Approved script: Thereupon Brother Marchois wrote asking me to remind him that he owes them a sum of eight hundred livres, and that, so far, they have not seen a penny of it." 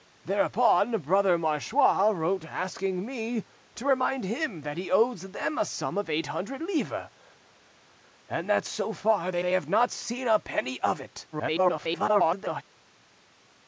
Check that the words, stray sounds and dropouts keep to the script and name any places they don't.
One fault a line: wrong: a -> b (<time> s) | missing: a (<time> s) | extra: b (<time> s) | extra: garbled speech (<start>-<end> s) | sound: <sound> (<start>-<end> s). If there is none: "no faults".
extra: they (9.4 s)
extra: garbled speech (11.3-12.6 s)